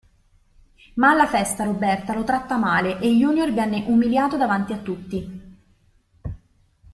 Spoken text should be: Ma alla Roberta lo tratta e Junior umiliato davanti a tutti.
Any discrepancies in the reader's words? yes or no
yes